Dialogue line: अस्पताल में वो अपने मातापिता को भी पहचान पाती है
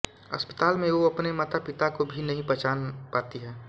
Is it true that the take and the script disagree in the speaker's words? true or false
true